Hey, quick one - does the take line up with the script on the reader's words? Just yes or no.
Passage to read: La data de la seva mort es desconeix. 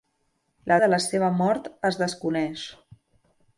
no